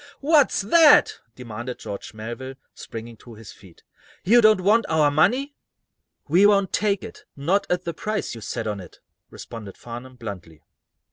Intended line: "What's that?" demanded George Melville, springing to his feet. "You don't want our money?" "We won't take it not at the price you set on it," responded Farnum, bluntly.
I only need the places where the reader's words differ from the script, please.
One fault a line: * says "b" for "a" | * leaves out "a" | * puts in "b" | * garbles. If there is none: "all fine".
all fine